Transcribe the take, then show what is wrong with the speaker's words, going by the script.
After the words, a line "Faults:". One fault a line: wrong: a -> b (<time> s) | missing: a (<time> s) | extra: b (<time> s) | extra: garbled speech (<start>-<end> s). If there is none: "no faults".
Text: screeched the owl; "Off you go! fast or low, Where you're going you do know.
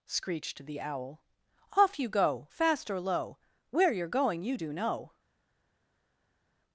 screeched the owl; "Off you go! fast or low, Where you're going you do know.
Faults:
no faults